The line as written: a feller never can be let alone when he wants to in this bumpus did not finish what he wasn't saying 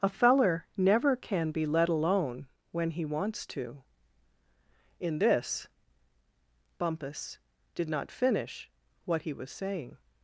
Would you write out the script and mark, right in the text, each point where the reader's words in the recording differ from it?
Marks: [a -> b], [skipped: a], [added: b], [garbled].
a feller never can be let alone when he wants to in this bumpus did not finish what he [wasn't -> was] saying